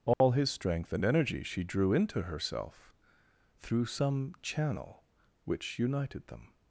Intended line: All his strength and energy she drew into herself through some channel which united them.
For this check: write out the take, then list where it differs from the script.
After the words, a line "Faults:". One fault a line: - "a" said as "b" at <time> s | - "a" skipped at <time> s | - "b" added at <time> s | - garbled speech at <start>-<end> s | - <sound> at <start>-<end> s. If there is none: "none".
All his strength and energy she drew into herself through some channel which united them.
Faults:
- dropout at 0.1-0.2 s